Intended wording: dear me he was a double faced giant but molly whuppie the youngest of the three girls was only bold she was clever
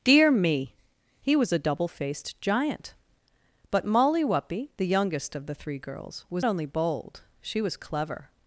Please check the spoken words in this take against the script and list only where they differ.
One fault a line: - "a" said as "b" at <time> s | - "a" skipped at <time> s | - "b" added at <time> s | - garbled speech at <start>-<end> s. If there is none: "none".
none